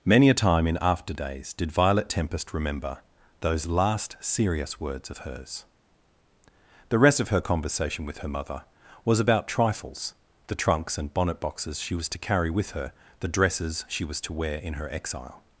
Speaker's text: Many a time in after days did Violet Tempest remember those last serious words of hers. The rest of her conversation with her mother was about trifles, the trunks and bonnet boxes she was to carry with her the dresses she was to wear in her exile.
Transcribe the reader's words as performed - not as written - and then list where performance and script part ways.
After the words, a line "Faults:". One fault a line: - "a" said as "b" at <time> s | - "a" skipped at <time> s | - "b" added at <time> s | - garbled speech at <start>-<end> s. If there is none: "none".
Many a time in after days did Violet Tempest remember those last serious words of hers. The rest of her conversation with her mother was about trifles, the trunks and bonnet boxes she was to carry with her the dresses she was to wear in her exile.
Faults:
none